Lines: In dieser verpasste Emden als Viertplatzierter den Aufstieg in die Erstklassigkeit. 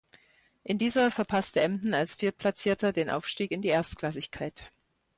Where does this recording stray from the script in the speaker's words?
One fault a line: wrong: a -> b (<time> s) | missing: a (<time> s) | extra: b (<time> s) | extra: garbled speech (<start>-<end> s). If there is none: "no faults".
no faults